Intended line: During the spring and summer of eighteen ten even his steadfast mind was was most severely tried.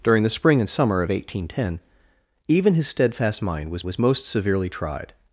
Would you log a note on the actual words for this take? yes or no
no